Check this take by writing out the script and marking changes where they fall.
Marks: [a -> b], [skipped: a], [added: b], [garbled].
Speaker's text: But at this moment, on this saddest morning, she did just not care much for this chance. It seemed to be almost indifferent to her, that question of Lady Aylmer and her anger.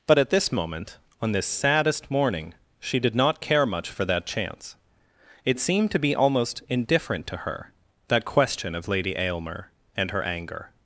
But at this moment, on this saddest morning, she did [skipped: just] not care much for [this -> that] chance. It seemed to be almost indifferent to her, that question of Lady Aylmer and her anger.